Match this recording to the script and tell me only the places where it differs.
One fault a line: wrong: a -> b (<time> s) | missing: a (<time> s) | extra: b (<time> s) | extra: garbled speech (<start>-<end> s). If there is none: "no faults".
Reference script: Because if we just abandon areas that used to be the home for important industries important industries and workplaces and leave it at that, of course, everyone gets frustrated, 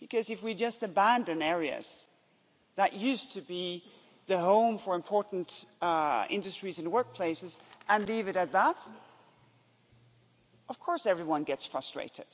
missing: important industries (6.8 s)